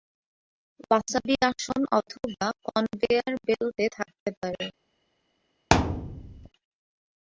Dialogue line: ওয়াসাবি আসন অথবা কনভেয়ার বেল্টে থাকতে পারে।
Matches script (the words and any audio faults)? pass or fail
fail